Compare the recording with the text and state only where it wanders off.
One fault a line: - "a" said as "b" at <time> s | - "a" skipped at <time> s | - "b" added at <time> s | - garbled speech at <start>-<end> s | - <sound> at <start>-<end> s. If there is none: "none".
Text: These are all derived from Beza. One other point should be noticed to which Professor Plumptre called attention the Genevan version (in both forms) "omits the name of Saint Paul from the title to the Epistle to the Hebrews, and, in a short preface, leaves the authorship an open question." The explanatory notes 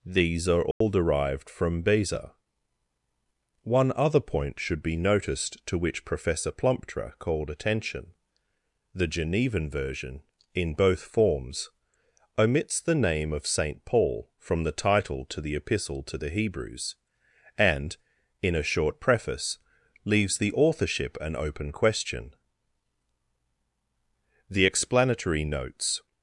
- dropout at 0.7-0.8 s